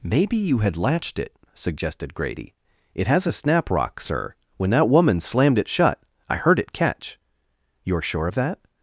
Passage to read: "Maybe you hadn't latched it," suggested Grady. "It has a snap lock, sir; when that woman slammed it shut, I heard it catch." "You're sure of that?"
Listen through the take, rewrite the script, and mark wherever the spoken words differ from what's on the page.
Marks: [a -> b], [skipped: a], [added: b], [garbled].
"Maybe you [hadn't -> had] latched it," suggested Grady. "It has a snap [lock, -> rock] sir; when that woman slammed it shut, I heard it catch." "You're sure of that?"